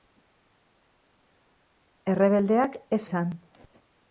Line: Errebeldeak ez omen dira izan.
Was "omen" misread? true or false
true